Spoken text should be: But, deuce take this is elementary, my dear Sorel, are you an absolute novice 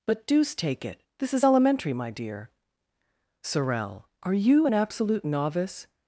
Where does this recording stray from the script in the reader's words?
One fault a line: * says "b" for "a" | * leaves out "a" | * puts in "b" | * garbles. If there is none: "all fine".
* puts in "it"